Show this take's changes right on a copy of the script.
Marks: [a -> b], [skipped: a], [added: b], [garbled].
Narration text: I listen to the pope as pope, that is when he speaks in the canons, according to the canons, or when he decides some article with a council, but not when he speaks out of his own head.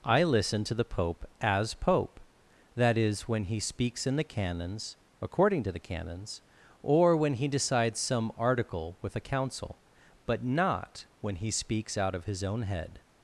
I listen to the pope as pope, that is when he speaks in the canons, according to the canons, or when he decides some article with a council, but not when he speaks out of his own head.